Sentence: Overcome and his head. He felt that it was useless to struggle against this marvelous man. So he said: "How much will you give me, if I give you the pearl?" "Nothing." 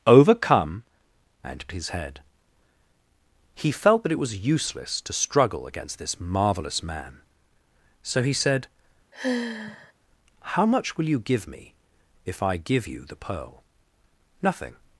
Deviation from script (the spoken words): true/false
false